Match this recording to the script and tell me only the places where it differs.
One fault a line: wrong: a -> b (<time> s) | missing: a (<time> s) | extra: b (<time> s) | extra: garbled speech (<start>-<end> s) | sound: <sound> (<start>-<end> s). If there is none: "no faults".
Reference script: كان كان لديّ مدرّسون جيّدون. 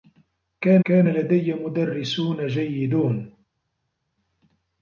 no faults